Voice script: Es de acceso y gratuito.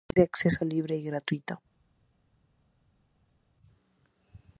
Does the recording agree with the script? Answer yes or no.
no